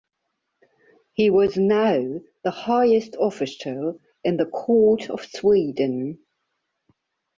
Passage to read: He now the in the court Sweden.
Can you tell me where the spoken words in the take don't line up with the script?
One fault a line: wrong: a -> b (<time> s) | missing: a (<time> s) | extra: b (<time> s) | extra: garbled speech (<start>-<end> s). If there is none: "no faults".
extra: was (1.3 s)
extra: highest official (2.5 s)
extra: of (5.1 s)